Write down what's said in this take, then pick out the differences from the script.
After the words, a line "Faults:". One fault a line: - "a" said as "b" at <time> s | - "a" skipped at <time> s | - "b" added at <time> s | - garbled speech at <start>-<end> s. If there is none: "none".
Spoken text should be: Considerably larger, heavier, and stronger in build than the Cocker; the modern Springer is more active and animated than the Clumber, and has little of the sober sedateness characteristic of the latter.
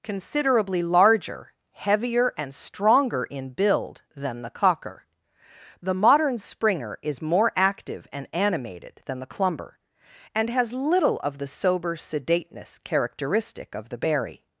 Considerably larger, heavier, and stronger in build than the Cocker; the modern Springer is more active and animated than the Clumber, and has little of the sober sedateness characteristic of the berry.
Faults:
- "latter" said as "berry" at 14.0 s